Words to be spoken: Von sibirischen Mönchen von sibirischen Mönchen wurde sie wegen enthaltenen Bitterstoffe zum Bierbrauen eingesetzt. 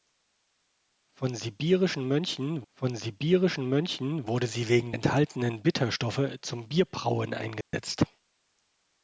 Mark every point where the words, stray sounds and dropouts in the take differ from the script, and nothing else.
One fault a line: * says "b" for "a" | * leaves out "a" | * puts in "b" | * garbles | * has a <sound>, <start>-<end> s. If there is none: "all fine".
* has a dropout, 7.6-7.7 s